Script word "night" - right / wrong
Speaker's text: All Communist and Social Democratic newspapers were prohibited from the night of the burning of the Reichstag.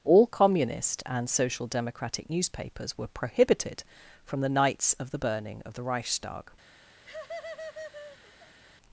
wrong